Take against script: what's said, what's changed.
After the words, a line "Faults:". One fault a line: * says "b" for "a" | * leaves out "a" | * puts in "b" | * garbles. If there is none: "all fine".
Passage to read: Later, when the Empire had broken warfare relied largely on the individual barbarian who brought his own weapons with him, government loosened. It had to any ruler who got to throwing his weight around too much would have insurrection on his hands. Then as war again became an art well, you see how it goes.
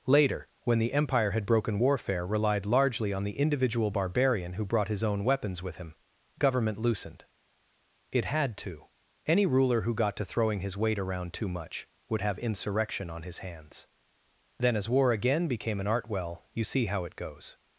Later, when the Empire had broken warfare relied largely on the individual barbarian who brought his own weapons with him, government loosened. It had to any ruler who got to throwing his weight around too much would have insurrection on his hands. Then as war again became an art well, you see how it goes.
Faults:
all fine